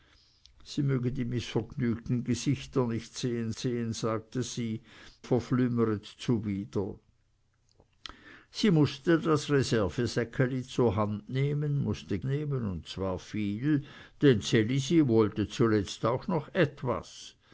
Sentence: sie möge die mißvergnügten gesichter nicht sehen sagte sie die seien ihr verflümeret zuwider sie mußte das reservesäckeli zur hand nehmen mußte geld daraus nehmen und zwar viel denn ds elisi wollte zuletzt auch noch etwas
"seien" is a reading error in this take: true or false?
true